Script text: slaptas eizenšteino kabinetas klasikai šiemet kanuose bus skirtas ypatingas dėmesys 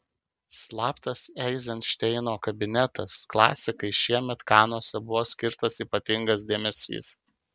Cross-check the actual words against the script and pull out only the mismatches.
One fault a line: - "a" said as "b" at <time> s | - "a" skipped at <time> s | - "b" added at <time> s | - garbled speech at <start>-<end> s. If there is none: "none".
- "bus" said as "buvo" at 5.1 s